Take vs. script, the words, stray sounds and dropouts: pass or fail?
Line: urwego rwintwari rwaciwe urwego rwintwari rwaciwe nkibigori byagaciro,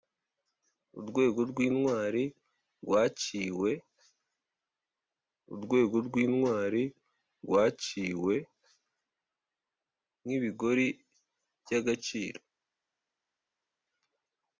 pass